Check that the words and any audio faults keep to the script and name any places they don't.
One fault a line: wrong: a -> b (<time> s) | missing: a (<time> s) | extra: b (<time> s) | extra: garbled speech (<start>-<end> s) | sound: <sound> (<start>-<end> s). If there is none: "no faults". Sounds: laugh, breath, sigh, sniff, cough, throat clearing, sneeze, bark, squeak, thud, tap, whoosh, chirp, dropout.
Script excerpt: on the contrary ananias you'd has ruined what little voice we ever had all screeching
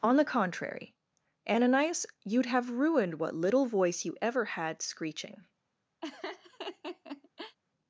wrong: has -> have (2.5 s)
wrong: we -> you (4.0 s)
missing: all (4.8 s)
sound: laugh (6.0-7.6 s)